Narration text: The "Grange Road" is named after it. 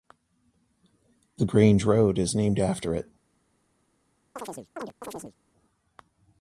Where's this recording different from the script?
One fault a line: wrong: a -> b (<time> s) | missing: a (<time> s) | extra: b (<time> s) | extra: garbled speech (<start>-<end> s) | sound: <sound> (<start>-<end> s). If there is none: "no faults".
sound: chirp (4.4-5.4 s)